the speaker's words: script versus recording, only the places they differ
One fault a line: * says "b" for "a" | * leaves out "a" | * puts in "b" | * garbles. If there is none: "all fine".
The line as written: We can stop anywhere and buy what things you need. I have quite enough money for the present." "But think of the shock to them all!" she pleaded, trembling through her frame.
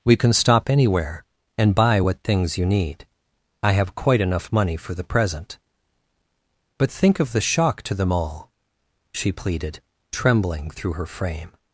all fine